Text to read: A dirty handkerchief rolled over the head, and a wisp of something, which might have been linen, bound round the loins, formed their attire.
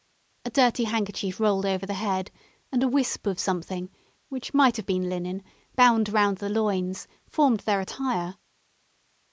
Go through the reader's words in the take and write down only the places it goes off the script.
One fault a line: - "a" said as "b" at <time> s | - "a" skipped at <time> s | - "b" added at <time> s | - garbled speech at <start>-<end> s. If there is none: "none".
none